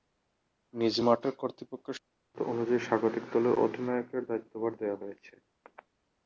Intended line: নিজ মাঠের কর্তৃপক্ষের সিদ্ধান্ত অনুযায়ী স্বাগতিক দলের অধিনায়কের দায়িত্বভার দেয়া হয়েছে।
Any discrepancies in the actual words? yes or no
no